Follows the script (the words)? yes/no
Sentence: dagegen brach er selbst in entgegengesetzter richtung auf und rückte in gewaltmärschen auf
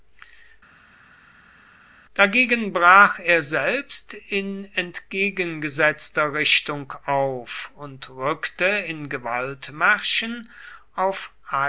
yes